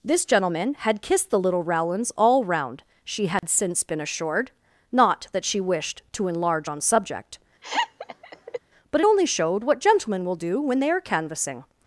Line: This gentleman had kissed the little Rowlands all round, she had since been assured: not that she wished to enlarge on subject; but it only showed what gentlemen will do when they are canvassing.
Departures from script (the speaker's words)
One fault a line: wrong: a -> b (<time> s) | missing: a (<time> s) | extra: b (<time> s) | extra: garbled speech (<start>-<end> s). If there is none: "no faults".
no faults